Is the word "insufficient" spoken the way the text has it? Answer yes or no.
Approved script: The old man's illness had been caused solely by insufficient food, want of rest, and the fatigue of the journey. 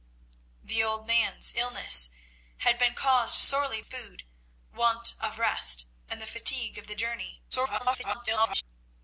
no